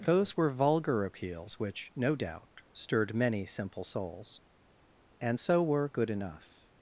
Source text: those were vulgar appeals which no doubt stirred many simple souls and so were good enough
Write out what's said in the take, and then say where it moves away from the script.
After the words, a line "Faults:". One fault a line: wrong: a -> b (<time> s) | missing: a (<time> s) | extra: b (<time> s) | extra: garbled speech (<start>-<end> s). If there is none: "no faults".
those were vulgar appeals which no doubt stirred many simple souls and so were good enough
Faults:
no faults